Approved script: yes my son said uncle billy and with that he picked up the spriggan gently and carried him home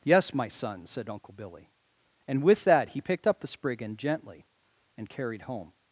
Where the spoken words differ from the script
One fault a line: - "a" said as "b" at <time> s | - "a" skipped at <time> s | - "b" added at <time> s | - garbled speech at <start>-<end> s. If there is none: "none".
- "him" skipped at 5.4 s